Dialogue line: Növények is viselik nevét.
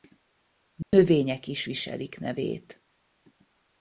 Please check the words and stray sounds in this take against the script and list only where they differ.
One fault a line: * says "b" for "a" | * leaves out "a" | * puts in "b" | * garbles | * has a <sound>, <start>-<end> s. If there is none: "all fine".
* has a dropout, 0.8-0.9 s